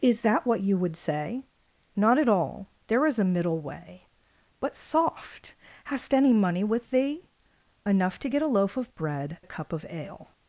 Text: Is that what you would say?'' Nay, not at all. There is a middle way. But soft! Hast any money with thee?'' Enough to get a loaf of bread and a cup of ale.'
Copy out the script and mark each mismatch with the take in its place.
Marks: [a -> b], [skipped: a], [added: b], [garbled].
Is that what you would say?'' [skipped: Nay,] not at all. There is a middle way. But soft! Hast any money with thee?'' Enough to get a loaf of bread [skipped: and] a cup of ale.'